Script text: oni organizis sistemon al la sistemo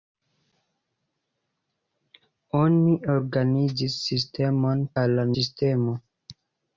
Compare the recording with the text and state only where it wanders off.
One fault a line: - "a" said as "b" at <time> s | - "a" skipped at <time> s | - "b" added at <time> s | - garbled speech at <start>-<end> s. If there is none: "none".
none